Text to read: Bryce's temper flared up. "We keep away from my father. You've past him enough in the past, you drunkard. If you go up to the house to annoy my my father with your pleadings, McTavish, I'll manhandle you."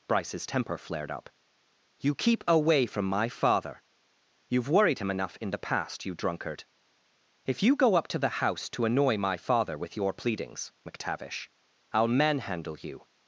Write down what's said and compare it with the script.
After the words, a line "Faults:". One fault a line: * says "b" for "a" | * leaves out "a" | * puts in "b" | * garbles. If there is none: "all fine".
Bryce's temper flared up. "You keep away from my father. You've worried him enough in the past, you drunkard. If you go up to the house to annoy my father with your pleadings, McTavish, I'll manhandle you."
Faults:
* says "You" for "We"
* says "worried" for "past"
* leaves out "my"